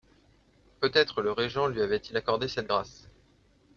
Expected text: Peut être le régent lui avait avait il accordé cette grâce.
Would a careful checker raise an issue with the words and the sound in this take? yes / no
yes